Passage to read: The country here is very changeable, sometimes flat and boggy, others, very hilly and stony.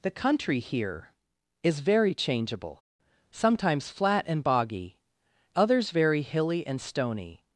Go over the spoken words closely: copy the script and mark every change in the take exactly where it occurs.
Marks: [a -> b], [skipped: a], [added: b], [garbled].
The country here is very changeable, sometimes flat and boggy, others, very hilly and stony.